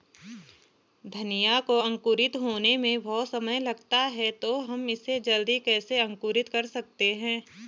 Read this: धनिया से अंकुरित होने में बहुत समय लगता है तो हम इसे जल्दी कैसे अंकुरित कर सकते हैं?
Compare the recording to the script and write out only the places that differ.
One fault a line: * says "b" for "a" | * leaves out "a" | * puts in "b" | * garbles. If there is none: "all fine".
* says "को" for "से"